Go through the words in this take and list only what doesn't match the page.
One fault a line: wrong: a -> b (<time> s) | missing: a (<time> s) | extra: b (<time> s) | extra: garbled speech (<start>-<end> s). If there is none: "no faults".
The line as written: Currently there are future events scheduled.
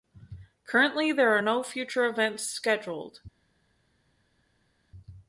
extra: no (1.4 s)